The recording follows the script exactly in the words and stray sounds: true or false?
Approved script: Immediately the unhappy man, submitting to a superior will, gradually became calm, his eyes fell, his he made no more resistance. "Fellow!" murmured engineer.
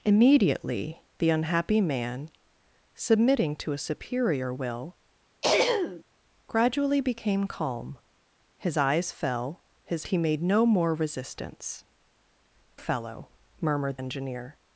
false